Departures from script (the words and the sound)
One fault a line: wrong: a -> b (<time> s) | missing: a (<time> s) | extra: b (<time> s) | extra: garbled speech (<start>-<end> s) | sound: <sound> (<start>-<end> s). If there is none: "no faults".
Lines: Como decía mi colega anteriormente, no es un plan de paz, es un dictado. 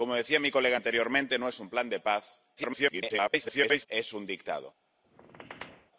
extra: garbled speech (2.6-3.9 s)
sound: squeak (5.0-5.9 s)